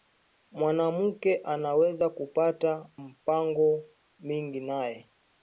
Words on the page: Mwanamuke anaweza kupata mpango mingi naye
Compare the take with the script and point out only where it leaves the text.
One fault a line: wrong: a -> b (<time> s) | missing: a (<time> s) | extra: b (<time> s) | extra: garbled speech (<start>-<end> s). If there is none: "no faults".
no faults